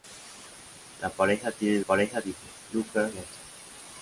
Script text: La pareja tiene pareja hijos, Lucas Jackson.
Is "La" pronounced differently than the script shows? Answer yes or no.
no